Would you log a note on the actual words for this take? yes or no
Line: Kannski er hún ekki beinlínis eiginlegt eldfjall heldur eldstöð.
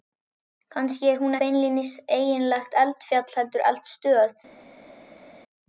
yes